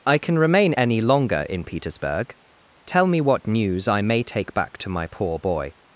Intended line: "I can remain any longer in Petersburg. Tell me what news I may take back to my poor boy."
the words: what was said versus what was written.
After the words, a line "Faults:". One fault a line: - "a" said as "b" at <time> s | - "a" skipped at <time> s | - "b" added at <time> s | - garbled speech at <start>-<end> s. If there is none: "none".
"I can remain any longer in Petersburg. Tell me what news I may take back to my poor boy."
Faults:
none